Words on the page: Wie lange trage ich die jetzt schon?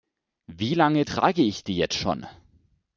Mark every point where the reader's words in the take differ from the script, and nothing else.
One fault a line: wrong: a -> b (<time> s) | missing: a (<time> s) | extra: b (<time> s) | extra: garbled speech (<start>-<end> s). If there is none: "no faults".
no faults